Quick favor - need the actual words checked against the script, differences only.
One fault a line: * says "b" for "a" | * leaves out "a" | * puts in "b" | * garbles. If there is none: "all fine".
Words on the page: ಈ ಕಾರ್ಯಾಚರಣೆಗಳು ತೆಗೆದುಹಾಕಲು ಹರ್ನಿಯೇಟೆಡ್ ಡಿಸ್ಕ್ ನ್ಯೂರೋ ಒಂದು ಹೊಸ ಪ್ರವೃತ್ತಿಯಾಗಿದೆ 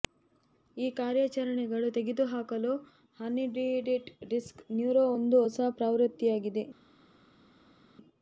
all fine